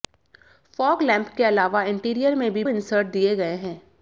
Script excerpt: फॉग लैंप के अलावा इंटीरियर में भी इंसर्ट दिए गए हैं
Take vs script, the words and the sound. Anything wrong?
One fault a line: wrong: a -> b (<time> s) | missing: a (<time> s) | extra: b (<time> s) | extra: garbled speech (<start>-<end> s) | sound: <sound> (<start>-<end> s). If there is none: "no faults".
no faults